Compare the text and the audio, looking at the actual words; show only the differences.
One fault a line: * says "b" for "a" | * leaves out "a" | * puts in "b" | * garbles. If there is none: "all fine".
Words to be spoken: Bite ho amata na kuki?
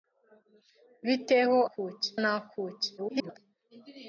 * says "kuki" for "amata"
* garbles